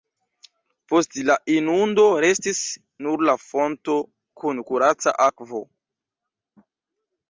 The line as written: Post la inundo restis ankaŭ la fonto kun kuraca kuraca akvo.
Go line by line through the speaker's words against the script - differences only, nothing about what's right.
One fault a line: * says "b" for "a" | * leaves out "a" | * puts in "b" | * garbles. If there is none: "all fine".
* says "nur" for "ankaŭ"
* leaves out "kuraca"